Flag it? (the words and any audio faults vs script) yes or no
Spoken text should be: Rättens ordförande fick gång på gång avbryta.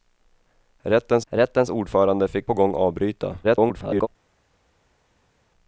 yes